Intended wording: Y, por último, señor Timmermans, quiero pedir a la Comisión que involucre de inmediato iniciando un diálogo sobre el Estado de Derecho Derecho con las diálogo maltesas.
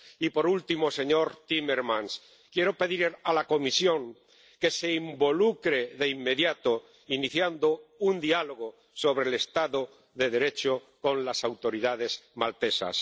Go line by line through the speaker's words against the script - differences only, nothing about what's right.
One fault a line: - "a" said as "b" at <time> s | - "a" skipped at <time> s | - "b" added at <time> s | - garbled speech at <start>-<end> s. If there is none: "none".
- "se" added at 4.7 s
- "Derecho" skipped at 10.8 s
- "diálogo" said as "autoridades" at 11.4 s